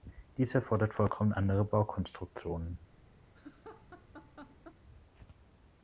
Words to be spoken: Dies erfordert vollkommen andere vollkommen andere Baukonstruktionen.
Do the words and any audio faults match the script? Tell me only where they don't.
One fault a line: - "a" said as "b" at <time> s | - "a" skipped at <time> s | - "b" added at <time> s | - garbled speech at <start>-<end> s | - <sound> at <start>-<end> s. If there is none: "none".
- "vollkommen andere" skipped at 1.6 s
- laugh at 3.3-4.8 s